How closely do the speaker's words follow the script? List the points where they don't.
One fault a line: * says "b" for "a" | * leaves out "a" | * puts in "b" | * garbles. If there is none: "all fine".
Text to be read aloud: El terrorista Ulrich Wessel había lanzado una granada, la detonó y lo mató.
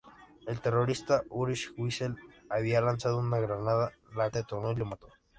all fine